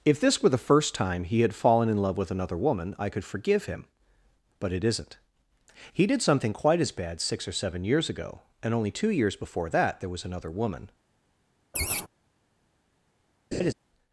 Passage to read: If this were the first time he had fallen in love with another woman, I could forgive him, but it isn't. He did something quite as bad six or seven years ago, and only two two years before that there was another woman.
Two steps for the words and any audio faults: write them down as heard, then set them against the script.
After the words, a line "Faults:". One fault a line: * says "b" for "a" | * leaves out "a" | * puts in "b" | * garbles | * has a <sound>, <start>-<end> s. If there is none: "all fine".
If this were the first time he had fallen in love with another woman, I could forgive him, but it isn't. He did something quite as bad six or seven years ago, and only two years before that there was another woman.
Faults:
* leaves out "two"
* has a laugh, 11.7-12.1 s
* has a laugh, 13.5-13.7 s